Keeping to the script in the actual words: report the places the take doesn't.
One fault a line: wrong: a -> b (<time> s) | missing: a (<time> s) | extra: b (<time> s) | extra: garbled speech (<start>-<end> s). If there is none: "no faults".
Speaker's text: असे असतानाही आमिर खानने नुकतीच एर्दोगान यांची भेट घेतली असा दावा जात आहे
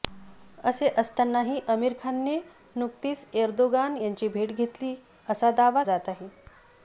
no faults